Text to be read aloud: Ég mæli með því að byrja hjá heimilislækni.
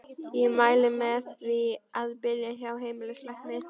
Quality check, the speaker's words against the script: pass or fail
pass